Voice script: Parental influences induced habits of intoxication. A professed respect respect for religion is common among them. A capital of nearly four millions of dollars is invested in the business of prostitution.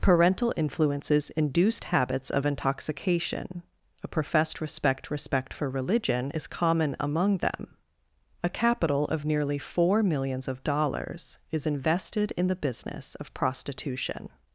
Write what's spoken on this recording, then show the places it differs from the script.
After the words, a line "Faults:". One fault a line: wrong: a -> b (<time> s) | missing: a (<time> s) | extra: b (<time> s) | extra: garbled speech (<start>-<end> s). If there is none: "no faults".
Parental influences induced habits of intoxication. A professed respect respect for religion is common among them. A capital of nearly four millions of dollars is invested in the business of prostitution.
Faults:
no faults